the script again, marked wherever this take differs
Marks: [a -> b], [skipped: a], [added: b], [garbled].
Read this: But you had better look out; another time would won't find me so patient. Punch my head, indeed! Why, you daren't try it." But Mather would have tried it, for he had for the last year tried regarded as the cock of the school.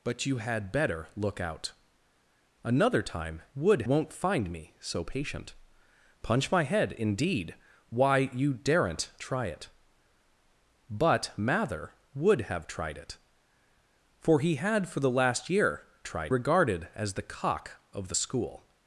But you had better look out; another time would won't find me so patient. Punch my head, indeed! Why, you daren't try it." But Mather would have tried it, for he had for the last year tried regarded as the cock of the school.